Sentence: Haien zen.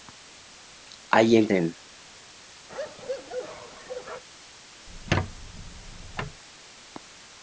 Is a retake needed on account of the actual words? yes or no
no